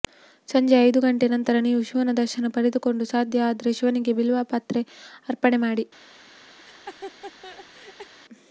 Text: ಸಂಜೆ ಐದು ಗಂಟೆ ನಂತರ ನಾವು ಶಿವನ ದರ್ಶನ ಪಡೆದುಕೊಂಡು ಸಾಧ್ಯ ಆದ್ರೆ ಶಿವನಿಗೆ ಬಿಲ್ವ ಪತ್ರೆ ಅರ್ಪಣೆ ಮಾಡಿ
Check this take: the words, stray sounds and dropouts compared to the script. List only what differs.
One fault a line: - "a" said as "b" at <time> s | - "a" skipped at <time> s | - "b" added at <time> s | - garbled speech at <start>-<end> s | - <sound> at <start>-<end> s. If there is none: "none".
- "ನಾವು" said as "ನೀವು" at 1.6 s
- laugh at 6.6-8.1 s